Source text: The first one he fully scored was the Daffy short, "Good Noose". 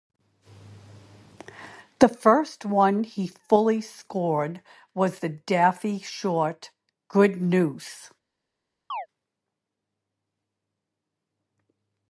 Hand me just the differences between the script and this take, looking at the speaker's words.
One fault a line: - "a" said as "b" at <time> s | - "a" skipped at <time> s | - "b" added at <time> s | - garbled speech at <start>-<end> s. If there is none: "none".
none